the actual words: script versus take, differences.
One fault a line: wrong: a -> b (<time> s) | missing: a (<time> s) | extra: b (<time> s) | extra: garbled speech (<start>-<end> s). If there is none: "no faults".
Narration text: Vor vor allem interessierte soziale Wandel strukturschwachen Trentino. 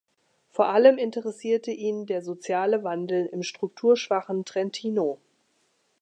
missing: vor (0.7 s)
extra: ihn der (1.7 s)
extra: im (3.3 s)